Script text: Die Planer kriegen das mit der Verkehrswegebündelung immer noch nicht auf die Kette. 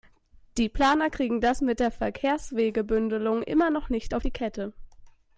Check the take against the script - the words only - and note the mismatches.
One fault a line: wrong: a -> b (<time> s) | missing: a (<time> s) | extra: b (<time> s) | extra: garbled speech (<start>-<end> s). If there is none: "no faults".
no faults